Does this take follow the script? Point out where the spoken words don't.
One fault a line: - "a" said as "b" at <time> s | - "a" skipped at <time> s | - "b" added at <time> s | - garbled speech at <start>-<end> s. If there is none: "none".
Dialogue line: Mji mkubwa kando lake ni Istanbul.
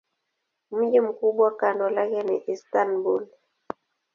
none